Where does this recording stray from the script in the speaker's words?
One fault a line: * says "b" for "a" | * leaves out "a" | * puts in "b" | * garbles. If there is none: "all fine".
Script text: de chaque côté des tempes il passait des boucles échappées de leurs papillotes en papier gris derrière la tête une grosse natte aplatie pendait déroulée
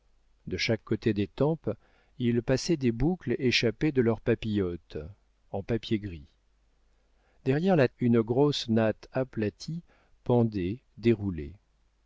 * leaves out "tête"